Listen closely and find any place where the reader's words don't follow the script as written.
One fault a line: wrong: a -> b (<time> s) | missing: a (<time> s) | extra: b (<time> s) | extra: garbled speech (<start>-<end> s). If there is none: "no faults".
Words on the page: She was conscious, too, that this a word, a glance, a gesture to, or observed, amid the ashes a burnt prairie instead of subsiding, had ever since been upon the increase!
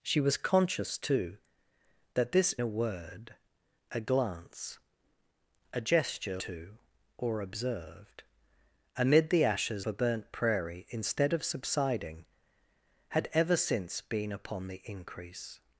no faults